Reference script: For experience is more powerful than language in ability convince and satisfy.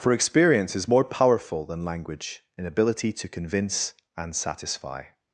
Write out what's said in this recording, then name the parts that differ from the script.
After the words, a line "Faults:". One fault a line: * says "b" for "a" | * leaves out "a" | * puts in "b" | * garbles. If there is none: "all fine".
For experience is more powerful than language in ability to convince and satisfy.
Faults:
* puts in "to"